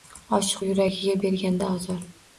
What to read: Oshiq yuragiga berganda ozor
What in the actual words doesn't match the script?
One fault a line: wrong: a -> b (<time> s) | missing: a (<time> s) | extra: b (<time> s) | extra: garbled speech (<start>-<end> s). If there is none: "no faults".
no faults